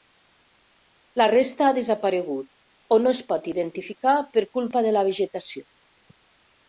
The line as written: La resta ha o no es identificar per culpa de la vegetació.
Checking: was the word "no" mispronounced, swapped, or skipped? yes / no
no